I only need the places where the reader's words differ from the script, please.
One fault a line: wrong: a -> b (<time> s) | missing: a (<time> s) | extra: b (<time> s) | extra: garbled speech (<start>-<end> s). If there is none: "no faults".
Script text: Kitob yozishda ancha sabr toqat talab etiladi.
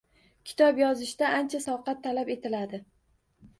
missing: sabr (1.6 s)